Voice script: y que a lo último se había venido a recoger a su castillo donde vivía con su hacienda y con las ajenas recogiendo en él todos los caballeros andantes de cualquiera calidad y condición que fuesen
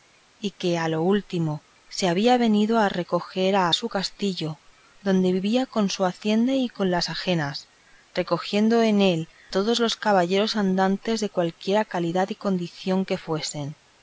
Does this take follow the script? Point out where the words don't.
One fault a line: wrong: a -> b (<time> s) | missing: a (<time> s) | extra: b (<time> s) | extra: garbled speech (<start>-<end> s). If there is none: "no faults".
no faults